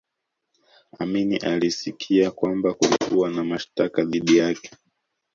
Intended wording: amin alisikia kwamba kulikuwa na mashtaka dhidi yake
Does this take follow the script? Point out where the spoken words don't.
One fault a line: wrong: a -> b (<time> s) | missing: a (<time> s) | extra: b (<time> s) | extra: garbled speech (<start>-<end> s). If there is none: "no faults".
no faults